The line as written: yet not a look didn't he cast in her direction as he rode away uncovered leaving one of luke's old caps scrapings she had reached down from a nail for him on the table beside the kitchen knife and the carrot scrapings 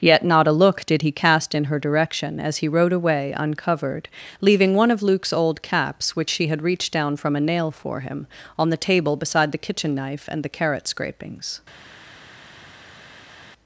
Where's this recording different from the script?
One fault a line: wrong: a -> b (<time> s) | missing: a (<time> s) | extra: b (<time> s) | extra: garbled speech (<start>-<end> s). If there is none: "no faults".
wrong: didn't -> did (0.8 s)
wrong: scrapings -> which (6.2 s)